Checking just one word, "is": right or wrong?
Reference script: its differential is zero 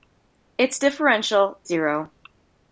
wrong